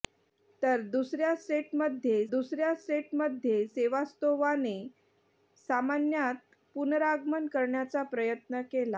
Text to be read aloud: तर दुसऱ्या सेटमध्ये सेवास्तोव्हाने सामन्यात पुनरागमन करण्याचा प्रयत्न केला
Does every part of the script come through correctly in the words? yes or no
no